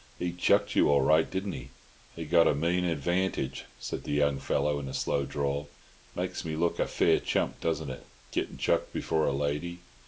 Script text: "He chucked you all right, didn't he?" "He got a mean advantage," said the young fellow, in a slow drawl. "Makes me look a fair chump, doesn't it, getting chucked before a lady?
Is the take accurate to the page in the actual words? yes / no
yes